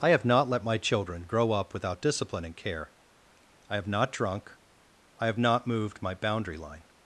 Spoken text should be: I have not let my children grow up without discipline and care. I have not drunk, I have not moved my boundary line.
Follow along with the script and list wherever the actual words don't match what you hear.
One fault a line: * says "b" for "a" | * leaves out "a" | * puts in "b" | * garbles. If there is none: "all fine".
all fine